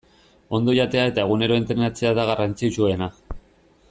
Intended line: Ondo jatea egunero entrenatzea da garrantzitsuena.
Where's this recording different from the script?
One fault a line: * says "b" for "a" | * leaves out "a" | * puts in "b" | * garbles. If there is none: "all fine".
* puts in "eta"